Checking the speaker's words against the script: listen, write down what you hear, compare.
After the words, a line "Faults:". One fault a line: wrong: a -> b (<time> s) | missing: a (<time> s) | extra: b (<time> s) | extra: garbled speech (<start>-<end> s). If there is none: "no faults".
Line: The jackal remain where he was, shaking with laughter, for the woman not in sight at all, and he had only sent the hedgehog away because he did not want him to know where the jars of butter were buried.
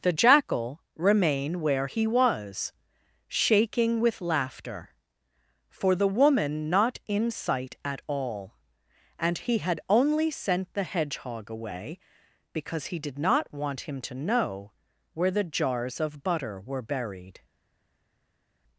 The jackal remain where he was, shaking with laughter, for the woman not in sight at all, and he had only sent the hedgehog away because he did not want him to know where the jars of butter were buried.
Faults:
no faults